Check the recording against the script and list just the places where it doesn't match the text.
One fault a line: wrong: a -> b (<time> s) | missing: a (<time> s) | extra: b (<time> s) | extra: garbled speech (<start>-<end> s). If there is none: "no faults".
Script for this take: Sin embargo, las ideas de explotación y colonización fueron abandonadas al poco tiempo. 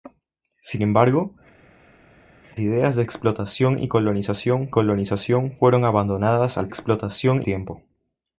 missing: las (1.4 s)
extra: colonización (4.7 s)
wrong: poco -> explotación (6.7 s)